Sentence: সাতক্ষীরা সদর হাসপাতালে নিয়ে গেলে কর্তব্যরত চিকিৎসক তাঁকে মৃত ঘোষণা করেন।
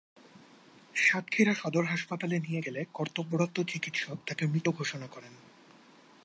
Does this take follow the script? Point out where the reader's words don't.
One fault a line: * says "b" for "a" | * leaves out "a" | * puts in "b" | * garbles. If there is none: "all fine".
all fine